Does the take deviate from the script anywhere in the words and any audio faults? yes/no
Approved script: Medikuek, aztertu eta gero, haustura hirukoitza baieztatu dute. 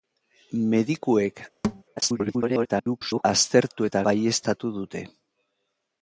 yes